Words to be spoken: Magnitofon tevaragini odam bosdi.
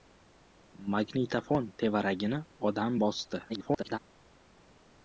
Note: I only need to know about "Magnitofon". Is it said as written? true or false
true